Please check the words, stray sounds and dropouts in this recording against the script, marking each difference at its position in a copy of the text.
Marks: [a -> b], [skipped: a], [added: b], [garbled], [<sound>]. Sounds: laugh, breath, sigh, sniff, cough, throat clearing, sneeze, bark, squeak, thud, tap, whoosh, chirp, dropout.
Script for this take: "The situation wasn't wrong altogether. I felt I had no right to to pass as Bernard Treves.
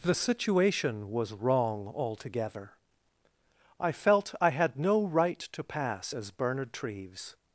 "The situation [wasn't -> was] wrong altogether. I felt I had no right to [skipped: to] pass as Bernard Treves.